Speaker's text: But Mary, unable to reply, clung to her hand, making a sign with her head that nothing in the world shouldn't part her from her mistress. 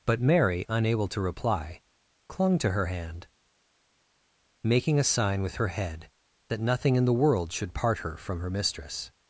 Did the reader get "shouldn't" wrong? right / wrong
wrong